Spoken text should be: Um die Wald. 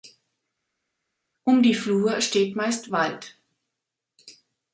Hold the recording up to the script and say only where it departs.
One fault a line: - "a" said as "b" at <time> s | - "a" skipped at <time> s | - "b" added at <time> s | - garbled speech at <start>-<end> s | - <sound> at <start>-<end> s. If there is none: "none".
- "Flur steht meist" added at 1.7 s